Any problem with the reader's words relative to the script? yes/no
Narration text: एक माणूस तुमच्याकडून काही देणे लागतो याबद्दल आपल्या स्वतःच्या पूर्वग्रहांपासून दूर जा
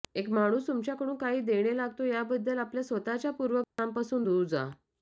no